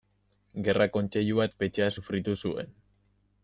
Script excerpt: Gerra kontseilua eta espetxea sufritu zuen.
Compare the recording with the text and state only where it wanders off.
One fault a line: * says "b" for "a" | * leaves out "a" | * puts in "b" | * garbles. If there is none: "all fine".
* leaves out "eta"